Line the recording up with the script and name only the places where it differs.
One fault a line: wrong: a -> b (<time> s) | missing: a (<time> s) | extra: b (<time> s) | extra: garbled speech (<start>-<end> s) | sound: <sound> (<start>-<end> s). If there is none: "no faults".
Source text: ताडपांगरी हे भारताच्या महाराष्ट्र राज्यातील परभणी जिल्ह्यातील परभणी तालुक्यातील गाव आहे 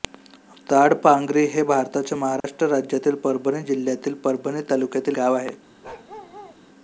sound: dropout (2.4-2.4 s)
sound: bark (5.8-6.6 s)